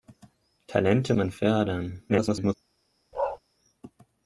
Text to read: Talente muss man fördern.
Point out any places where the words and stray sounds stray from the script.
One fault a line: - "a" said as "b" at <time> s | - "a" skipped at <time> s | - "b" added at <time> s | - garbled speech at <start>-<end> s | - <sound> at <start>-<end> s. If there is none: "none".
- "muss" skipped at 1.1 s
- garbled speech at 2.1-2.5 s
- bark at 3.1-3.4 s